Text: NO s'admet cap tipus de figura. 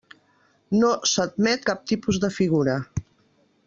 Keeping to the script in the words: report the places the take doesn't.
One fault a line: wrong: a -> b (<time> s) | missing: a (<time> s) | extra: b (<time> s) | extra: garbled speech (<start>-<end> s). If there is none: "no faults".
no faults